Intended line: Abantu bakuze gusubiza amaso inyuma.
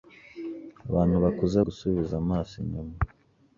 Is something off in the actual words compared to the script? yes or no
no